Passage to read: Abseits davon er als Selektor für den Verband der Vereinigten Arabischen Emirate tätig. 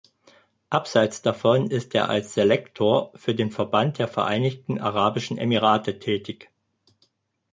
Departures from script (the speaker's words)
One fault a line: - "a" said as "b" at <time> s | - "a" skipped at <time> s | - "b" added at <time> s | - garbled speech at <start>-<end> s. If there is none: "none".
- "ist" added at 1.7 s